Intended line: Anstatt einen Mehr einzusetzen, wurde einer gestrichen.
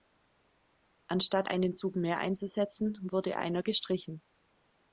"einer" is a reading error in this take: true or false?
false